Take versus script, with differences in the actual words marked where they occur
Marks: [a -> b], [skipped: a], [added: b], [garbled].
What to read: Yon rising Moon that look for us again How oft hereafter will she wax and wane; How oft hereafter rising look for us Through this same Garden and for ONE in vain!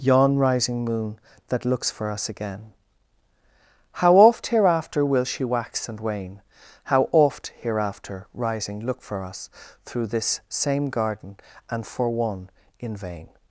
Yon rising Moon that [look -> looks] for us again How oft hereafter will she wax and wane; How oft hereafter rising look for us Through this same Garden and for ONE in vain!